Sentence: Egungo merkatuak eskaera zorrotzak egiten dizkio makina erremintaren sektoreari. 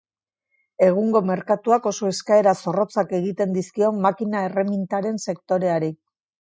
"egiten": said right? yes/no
yes